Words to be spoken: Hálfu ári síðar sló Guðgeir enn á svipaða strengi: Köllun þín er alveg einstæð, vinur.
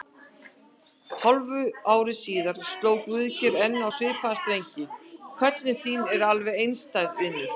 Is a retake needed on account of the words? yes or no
no